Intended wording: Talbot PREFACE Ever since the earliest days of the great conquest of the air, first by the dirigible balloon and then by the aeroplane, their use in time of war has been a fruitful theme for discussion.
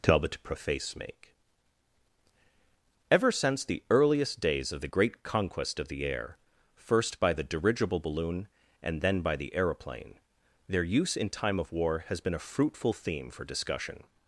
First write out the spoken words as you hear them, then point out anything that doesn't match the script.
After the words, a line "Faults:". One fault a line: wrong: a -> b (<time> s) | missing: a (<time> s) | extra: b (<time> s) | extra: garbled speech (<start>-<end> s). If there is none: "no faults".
Talbot PREFACE make Ever since the earliest days of the great conquest of the air, first by the dirigible balloon and then by the aeroplane, their use in time of war has been a fruitful theme for discussion.
Faults:
extra: make (0.9 s)